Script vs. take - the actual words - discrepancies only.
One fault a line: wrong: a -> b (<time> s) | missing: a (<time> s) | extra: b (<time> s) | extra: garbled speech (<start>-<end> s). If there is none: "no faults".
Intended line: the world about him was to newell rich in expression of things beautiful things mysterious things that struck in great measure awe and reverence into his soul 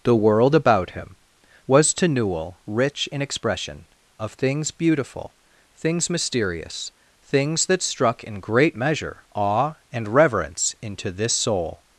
wrong: his -> this (11.1 s)